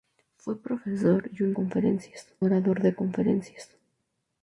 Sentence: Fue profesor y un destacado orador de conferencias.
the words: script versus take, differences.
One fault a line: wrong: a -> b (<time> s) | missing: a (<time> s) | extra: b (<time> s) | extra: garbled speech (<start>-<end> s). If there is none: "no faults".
wrong: destacado -> conferencias (1.5 s)